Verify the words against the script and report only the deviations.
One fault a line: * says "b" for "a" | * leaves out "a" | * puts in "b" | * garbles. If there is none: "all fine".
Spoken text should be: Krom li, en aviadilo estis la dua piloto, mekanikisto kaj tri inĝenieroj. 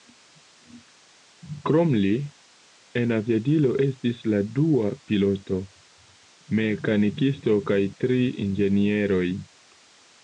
all fine